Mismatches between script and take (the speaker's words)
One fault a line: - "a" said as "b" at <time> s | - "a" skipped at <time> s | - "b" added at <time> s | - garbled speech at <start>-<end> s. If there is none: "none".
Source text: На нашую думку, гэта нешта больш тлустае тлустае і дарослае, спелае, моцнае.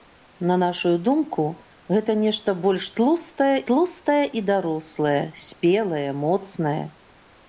none